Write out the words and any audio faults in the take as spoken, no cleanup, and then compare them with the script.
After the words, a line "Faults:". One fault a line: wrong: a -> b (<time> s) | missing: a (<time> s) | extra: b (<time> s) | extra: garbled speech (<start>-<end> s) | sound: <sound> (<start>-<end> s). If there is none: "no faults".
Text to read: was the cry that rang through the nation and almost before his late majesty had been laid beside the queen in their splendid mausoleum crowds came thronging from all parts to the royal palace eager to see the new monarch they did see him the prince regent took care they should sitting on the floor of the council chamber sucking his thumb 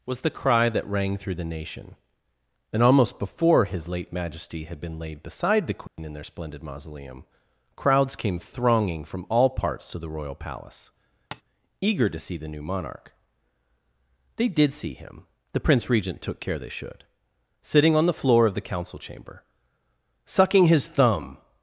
was the cry that rang through the nation and almost before his late majesty had been laid beside the queen in their splendid mausoleum crowds came thronging from all parts to the royal palace eager to see the new monarch they did see him the prince regent took care they should sitting on the floor of the council chamber sucking his thumb
Faults:
sound: dropout (5.9-6.0 s)
sound: tap (11.3-11.4 s)